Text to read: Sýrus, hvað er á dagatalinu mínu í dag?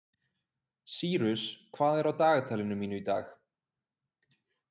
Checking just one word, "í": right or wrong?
right